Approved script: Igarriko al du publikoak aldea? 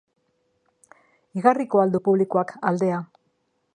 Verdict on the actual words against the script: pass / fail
pass